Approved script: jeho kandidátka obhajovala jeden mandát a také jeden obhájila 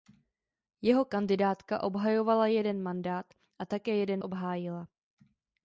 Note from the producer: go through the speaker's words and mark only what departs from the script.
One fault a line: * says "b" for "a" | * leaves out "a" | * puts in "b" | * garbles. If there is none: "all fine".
all fine